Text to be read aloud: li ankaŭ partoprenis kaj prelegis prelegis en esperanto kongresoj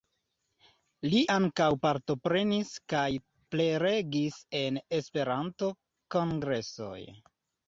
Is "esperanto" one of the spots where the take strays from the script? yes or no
no